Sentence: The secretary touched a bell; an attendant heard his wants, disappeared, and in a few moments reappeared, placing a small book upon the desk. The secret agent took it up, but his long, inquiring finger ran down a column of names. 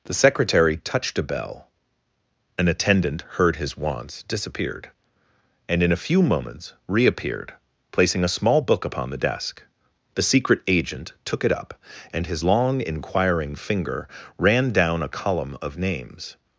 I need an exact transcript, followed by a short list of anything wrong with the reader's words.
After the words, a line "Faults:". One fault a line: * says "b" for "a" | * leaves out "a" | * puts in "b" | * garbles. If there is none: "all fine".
The secretary touched a bell; an attendant heard his wants, disappeared, and in a few moments reappeared, placing a small book upon the desk. The secret agent took it up, and his long, inquiring finger ran down a column of names.
Faults:
* says "and" for "but"